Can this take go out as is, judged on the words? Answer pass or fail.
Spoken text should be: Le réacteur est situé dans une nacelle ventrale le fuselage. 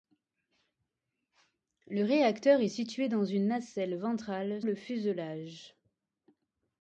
pass